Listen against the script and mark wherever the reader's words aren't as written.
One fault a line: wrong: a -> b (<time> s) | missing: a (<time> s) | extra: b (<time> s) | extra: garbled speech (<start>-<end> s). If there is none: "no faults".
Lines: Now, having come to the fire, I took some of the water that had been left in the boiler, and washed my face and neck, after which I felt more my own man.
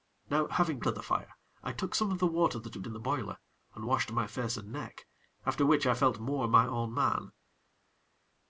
missing: come (0.8 s)
missing: been left (2.8 s)